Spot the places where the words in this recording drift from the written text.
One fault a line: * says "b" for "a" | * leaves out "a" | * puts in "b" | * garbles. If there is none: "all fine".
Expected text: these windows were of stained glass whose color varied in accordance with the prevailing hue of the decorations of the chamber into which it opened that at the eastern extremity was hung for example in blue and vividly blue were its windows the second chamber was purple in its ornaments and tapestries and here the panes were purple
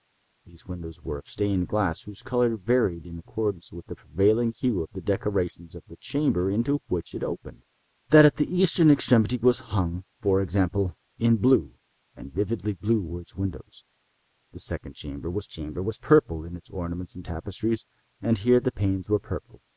* puts in "chamber was"